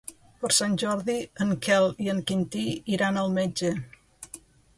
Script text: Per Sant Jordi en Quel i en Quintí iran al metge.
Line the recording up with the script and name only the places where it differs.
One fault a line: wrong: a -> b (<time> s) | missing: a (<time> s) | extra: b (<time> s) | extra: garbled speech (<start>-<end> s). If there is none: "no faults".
no faults